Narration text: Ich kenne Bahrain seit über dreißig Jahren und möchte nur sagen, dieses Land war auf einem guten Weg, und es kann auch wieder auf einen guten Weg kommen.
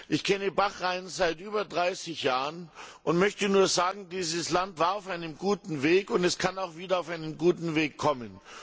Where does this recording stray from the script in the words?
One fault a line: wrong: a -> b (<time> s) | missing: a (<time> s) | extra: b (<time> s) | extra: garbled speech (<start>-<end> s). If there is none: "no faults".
no faults